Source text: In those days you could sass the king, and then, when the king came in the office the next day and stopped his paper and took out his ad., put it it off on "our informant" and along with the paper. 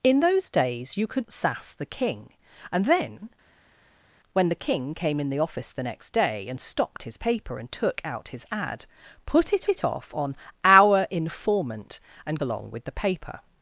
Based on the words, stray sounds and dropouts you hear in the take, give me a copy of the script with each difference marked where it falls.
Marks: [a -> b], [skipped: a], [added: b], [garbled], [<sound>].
In those days you could sass the king, and then, when the king came in the office the next day and stopped his paper and took out his ad., put it it off on "our informant" and along with the paper.